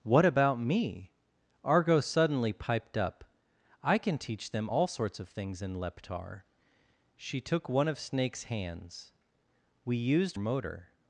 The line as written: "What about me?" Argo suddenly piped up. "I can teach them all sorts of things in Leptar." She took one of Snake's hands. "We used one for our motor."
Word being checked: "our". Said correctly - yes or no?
no